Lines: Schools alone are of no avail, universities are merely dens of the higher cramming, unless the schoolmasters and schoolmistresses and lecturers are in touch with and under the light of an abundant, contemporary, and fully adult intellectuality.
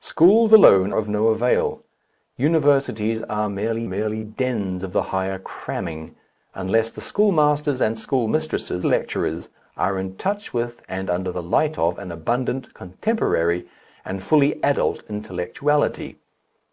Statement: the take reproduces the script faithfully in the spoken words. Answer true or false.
false